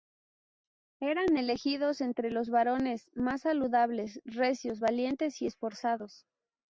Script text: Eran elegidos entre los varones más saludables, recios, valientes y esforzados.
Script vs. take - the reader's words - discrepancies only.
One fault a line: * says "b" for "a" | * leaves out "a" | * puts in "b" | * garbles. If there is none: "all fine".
all fine